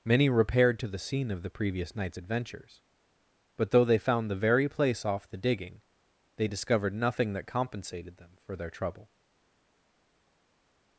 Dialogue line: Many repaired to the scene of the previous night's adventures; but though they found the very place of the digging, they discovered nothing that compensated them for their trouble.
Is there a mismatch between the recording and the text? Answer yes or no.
yes